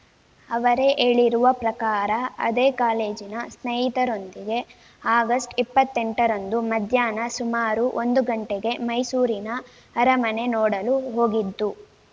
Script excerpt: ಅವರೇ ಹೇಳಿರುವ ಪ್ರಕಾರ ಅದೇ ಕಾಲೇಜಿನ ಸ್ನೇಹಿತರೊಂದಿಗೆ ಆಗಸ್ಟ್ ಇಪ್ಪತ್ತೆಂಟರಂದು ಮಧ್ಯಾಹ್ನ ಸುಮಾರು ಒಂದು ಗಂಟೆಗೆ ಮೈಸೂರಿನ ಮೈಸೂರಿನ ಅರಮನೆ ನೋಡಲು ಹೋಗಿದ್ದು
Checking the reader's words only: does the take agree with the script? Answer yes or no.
no